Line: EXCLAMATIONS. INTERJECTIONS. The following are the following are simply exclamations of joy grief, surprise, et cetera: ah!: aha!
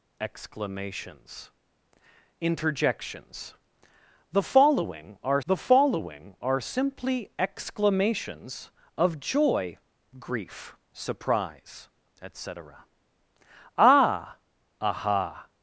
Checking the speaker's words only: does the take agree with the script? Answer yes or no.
yes